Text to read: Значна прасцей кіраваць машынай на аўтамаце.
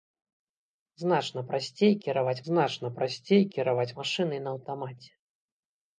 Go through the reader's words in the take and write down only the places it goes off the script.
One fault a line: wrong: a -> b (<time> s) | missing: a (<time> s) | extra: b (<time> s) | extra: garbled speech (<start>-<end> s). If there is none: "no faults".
extra: значна прасцей кіраваць (2.5 s)